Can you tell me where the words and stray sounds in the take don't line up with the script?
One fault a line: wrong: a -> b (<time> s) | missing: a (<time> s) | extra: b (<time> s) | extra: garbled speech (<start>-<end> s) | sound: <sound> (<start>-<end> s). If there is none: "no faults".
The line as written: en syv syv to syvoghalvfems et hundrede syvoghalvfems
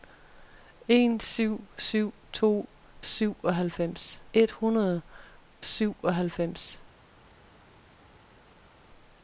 no faults